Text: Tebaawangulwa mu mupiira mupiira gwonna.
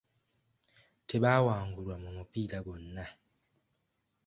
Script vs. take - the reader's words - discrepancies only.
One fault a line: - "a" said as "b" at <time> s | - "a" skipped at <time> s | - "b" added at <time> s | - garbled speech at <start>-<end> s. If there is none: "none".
- "mupiira" skipped at 2.6 s